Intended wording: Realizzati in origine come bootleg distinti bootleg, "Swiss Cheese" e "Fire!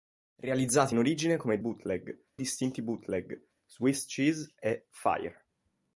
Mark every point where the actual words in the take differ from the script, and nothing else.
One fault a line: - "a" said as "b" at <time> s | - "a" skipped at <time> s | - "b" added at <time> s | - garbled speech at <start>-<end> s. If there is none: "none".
none